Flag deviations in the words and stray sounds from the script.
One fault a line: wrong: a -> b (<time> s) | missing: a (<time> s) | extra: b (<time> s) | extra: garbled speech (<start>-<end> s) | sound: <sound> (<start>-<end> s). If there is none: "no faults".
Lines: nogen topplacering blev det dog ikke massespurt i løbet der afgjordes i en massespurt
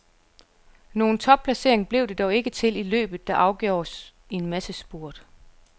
wrong: massespurt -> til (2.5 s)